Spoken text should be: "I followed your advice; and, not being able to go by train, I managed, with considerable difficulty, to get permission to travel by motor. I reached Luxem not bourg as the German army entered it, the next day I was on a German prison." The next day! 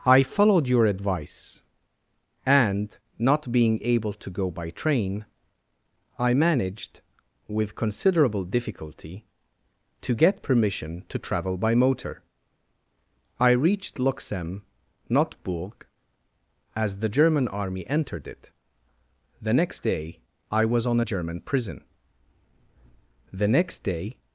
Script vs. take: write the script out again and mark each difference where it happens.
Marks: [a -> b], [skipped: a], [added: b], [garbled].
"I followed your advice; and, not being able to go by train, I managed, with considerable difficulty, to get permission to travel by motor. I reached Luxem not bourg as the German army entered it, the next day I was on a German prison." The next day!